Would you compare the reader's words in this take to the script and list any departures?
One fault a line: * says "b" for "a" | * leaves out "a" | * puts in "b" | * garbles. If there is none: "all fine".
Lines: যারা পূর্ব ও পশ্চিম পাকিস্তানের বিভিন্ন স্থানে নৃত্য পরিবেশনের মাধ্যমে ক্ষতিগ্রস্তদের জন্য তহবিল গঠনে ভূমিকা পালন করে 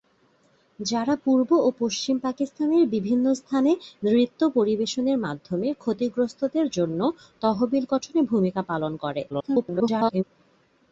* garbles